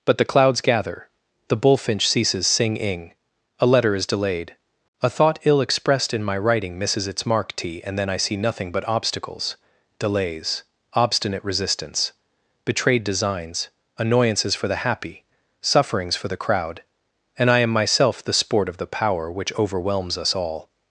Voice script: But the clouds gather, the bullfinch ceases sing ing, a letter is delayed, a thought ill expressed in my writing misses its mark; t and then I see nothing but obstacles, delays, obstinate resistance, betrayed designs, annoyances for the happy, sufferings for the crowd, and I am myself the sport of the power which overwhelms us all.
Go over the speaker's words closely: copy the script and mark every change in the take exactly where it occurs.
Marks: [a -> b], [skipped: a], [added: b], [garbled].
But the clouds gather, the bullfinch ceases sing ing, a letter is delayed, a thought ill expressed in my writing misses its mark; t and then I see nothing but obstacles, delays, obstinate resistance, betrayed designs, annoyances for the happy, sufferings for the crowd, and I am myself the sport of the power which overwhelms us all.